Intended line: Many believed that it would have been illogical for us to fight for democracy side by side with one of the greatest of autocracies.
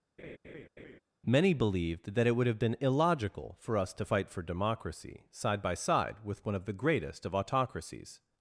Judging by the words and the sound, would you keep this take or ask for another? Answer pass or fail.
fail